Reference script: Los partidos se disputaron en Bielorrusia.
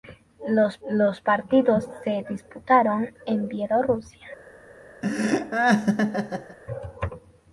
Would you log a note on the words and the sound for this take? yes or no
yes